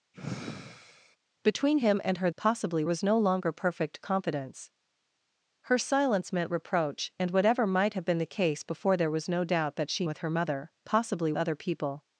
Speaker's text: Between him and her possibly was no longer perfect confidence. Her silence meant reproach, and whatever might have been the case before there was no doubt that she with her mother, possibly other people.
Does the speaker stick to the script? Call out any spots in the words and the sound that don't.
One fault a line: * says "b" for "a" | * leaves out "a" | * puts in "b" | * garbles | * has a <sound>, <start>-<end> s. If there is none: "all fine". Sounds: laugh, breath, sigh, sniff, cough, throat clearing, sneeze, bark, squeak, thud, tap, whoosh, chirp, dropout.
* has a sigh, 0.1-1.2 s